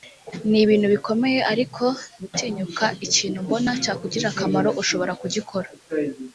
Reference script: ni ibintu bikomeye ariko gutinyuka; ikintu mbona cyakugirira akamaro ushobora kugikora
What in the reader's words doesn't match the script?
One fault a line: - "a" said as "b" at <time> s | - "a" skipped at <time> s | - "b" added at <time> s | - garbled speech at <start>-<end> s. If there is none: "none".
none